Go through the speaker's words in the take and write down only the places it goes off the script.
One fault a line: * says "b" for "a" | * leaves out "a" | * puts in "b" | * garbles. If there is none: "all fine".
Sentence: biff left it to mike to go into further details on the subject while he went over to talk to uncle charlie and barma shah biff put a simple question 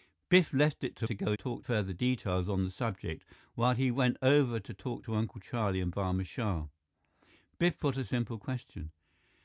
* leaves out "mike"
* says "talk" for "into"